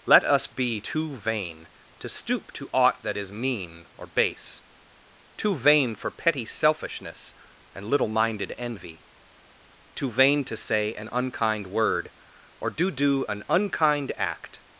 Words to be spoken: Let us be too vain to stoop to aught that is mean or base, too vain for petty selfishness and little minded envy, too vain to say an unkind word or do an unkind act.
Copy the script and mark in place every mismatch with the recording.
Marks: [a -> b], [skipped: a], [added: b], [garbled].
Let us be too vain to stoop to aught that is mean or base, too vain for petty selfishness and little minded envy, too vain to say an unkind word or do [added: do] an unkind act.